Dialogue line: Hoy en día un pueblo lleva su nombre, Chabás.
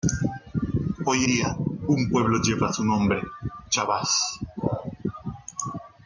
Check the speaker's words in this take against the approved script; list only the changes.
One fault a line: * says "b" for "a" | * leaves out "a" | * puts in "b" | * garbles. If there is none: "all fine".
* leaves out "en"